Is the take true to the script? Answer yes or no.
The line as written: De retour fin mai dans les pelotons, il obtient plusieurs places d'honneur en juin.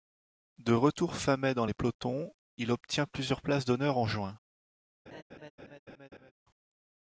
yes